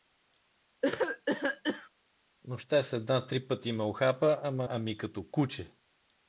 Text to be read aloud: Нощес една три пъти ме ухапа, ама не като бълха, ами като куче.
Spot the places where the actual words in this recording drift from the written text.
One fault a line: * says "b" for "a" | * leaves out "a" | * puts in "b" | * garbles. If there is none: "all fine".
* leaves out "не като бълха"